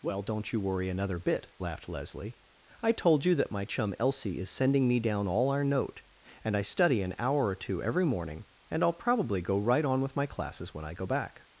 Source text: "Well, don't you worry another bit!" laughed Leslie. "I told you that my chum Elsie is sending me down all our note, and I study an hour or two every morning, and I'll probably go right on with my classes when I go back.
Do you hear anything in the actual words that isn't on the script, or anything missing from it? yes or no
no